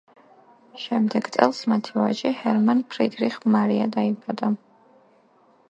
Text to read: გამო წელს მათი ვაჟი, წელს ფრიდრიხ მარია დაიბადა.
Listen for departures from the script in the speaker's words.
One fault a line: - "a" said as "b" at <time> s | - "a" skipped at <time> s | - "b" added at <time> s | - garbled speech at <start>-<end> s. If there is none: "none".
- "გამო" said as "შემდეგ" at 0.8 s
- "წელს" said as "ჰერმან" at 2.4 s